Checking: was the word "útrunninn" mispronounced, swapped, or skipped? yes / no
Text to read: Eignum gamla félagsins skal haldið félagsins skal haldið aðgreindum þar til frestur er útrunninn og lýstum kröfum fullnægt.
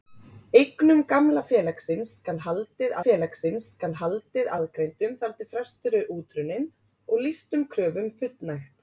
no